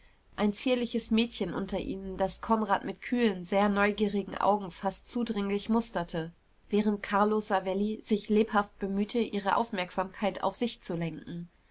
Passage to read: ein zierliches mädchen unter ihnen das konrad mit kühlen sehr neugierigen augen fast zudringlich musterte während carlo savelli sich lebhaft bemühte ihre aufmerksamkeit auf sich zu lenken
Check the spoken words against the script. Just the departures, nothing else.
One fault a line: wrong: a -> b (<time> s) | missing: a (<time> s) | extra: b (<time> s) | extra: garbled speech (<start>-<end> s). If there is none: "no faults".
no faults